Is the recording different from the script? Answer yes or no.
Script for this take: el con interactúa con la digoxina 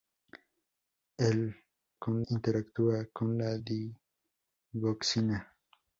no